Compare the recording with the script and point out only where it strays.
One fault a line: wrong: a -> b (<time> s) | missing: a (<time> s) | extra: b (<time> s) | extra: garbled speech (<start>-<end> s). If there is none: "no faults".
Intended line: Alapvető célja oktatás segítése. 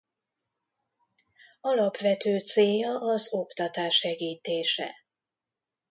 extra: az (3.0 s)